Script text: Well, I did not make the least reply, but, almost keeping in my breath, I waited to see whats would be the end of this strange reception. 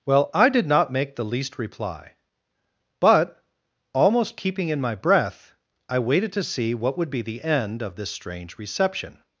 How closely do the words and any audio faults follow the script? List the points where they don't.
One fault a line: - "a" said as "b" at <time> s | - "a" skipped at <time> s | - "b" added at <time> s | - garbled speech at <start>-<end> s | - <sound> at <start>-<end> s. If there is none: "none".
- "whats" said as "what" at 6.7 s